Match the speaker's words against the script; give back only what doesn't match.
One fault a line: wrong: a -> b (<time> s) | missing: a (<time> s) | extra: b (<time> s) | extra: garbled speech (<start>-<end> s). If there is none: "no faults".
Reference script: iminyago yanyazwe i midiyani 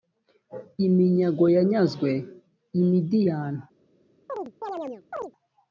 no faults